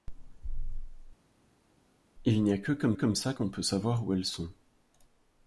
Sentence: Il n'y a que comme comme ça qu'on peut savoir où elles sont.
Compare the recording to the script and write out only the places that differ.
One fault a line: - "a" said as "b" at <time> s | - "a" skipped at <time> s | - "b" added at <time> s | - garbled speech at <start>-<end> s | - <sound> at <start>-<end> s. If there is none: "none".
none